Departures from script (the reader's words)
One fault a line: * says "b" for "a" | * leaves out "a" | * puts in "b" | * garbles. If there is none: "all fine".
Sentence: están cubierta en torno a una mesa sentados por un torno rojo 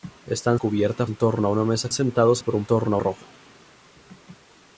all fine